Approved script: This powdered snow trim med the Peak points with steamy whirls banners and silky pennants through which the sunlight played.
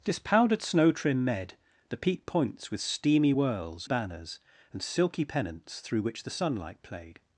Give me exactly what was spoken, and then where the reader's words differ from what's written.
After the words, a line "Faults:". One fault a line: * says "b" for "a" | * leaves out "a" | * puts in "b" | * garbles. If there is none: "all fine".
This powdered snow trim med the Peak points with steamy whirls banners and silky pennants through which the sunlight played.
Faults:
all fine